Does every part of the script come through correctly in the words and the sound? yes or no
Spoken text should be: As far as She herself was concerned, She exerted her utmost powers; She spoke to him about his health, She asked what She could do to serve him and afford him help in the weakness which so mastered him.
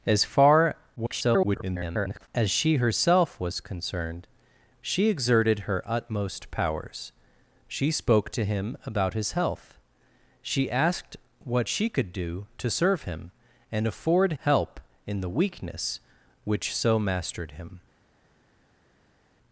no